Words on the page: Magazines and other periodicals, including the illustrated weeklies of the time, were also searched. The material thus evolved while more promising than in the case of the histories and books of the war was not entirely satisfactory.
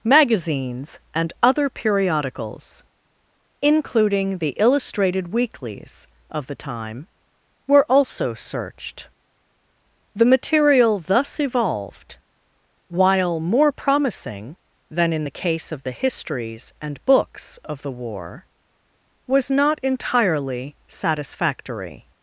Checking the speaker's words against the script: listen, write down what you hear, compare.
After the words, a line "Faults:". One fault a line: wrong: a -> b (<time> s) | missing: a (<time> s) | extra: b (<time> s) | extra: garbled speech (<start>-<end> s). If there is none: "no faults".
Magazines and other periodicals, including the illustrated weeklies of the time, were also searched. The material thus evolved while more promising than in the case of the histories and books of the war was not entirely satisfactory.
Faults:
no faults